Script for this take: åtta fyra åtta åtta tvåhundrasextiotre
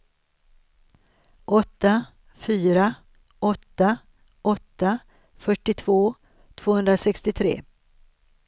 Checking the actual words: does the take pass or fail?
fail